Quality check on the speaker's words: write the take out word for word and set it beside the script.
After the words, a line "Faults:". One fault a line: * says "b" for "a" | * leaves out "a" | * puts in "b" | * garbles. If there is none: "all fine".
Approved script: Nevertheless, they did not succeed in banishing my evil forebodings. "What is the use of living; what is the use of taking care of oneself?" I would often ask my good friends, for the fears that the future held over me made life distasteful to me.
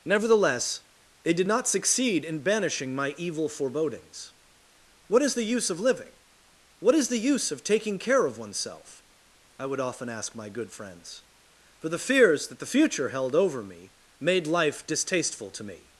Nevertheless, they did not succeed in banishing my evil forebodings. "What is the use of living; what is the use of taking care of oneself?" I would often ask my good friends, for the fears that the future held over me made life distasteful to me.
Faults:
all fine